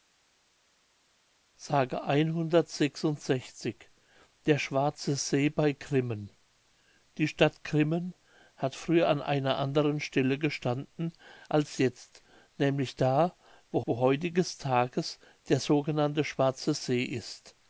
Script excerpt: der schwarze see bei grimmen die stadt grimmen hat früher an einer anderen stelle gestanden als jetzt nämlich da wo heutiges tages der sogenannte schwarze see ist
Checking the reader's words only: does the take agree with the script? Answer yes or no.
no